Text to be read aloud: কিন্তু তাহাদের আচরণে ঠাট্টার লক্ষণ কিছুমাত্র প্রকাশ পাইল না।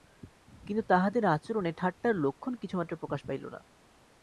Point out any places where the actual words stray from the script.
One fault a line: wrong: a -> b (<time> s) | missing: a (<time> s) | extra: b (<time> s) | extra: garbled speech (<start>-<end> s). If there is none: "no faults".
no faults